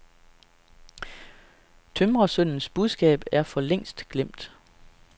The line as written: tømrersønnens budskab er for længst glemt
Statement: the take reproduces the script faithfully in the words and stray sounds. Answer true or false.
true